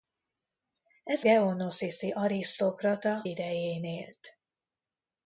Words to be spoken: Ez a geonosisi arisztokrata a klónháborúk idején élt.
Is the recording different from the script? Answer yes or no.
yes